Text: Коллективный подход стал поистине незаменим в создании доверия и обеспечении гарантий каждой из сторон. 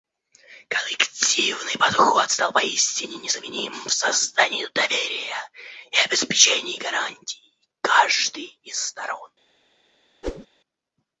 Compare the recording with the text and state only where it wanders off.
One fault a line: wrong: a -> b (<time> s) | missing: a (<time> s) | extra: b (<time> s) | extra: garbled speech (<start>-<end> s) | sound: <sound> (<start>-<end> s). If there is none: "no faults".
sound: whoosh (10.2-10.5 s)